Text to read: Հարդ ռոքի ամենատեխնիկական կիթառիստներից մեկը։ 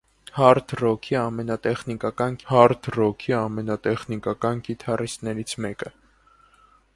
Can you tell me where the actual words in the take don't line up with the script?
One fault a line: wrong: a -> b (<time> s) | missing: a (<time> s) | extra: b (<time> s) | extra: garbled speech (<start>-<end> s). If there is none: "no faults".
extra: հարդ ռոքի ամենատեխնիկական (2.5 s)